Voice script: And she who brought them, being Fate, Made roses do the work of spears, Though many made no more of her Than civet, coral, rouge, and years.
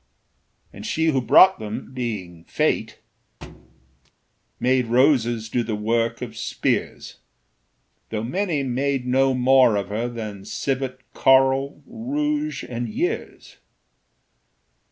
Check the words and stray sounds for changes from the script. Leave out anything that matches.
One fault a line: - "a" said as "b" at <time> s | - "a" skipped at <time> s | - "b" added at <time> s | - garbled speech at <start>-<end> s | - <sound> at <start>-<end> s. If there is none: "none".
- thud at 3.4-4.1 s